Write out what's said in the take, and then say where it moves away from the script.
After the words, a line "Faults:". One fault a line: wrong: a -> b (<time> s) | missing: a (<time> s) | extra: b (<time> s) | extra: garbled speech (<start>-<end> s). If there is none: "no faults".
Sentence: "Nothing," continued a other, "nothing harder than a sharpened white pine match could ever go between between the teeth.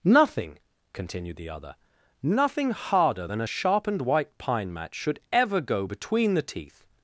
"Nothing," continued the other, "nothing harder than a sharpened white pine match should ever go between the teeth.
Faults:
wrong: a -> the (1.4 s)
wrong: could -> should (4.9 s)
missing: between (6.3 s)